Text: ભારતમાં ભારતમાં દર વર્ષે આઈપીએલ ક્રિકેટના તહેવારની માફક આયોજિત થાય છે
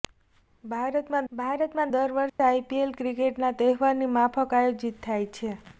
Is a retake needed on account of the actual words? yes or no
no